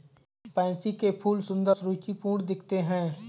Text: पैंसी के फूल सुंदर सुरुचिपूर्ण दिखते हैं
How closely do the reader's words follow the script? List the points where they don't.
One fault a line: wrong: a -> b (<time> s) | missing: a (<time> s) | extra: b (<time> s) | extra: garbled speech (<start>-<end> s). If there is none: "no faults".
no faults